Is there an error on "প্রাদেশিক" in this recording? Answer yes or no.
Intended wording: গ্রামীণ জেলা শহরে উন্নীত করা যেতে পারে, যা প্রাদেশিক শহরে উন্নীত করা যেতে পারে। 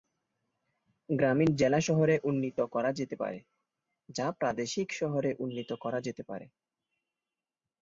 no